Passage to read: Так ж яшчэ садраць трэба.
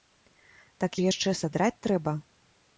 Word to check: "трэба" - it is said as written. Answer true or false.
true